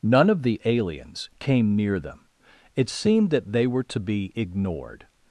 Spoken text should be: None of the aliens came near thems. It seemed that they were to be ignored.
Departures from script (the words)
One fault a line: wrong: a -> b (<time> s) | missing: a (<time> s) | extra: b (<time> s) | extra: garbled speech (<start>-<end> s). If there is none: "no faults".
wrong: thems -> them (2.0 s)